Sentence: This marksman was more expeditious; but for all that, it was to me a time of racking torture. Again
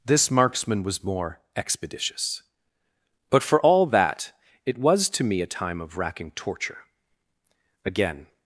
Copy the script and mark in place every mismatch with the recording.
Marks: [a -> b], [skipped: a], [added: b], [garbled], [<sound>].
This marksman was more expeditious; but for all that, it was to me a time of racking torture. Again